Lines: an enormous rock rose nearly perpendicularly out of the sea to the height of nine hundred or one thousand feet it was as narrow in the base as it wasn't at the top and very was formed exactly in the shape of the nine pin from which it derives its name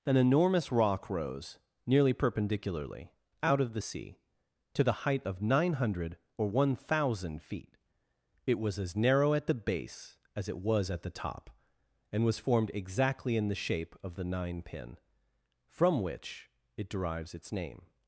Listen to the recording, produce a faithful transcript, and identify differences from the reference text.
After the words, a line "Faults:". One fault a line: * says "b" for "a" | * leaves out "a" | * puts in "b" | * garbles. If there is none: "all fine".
an enormous rock rose nearly perpendicularly out of the sea to the height of nine hundred or one thousand feet it was as narrow at the base as it was at the top and was formed exactly in the shape of the nine pin from which it derives its name
Faults:
* says "at" for "in"
* says "was" for "wasn't"
* leaves out "very"